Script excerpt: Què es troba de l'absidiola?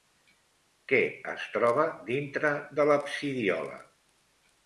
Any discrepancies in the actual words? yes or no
yes